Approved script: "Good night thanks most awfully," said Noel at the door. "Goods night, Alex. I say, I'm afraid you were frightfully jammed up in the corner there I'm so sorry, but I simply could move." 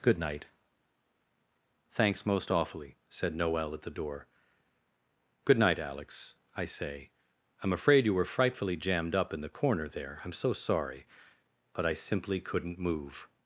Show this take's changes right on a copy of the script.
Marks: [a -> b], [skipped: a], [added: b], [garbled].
"Good night thanks most awfully," said Noel at the door. ["Goods -> Good] night, Alex. I say, I'm afraid you were frightfully jammed up in the corner there I'm so sorry, but I simply [could -> couldn't] move."